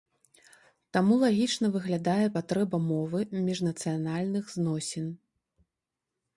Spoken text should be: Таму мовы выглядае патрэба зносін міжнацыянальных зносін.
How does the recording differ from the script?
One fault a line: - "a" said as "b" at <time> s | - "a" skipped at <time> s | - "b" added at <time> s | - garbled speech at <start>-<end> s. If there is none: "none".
- "мовы" said as "лагічна" at 1.2 s
- "зносін" said as "мовы" at 2.9 s